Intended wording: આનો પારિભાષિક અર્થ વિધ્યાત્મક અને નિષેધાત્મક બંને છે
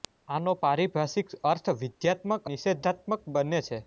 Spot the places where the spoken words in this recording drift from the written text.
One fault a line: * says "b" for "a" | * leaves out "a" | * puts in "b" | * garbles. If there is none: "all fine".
* leaves out "અને"